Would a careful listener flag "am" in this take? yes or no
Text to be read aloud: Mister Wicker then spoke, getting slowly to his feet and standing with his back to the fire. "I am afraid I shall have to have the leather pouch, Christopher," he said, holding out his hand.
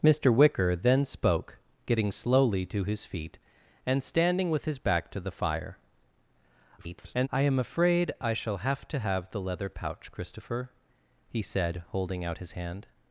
no